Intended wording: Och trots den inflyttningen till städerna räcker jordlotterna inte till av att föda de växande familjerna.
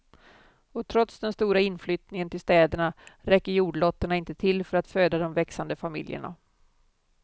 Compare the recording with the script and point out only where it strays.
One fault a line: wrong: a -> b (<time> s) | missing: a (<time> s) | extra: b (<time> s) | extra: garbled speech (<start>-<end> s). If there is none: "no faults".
extra: stora (1.3 s)
wrong: av -> för (4.7 s)